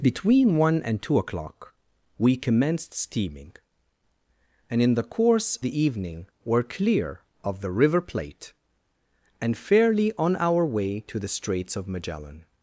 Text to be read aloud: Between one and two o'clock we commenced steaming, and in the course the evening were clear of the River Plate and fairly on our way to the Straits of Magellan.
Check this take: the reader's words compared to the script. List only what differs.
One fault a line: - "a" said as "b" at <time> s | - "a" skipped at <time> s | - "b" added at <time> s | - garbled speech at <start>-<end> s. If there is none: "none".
none